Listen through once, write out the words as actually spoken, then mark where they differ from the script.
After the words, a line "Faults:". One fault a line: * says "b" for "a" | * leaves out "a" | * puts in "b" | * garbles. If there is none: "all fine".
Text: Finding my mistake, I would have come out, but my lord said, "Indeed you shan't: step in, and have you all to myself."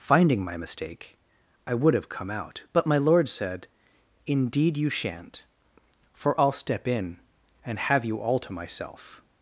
Finding my mistake, I would have come out, but my lord said, "Indeed you shan't: for I'll step in, and have you all to myself."
Faults:
* puts in "for I'll"